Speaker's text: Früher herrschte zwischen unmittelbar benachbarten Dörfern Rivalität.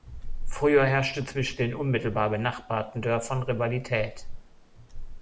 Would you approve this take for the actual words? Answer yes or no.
no